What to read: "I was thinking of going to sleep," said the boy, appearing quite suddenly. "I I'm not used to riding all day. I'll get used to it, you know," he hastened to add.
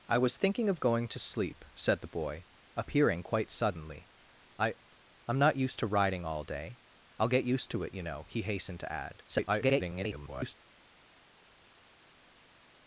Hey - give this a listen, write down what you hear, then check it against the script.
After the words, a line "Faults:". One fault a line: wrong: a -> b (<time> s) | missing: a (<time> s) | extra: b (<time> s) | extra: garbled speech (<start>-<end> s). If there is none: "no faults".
"I was thinking of going to sleep," said the boy, appearing quite suddenly. "I I'm not used to riding all day. I'll get used to it, you know," he hastened to add. [garbled]
Faults:
extra: garbled speech (9.3-10.6 s)